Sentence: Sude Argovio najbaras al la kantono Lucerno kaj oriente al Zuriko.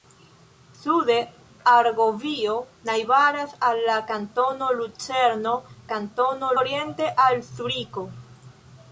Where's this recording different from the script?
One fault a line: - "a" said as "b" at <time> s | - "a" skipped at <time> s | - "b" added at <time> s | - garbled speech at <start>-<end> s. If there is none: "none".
- "kaj" said as "kantono" at 5.9 s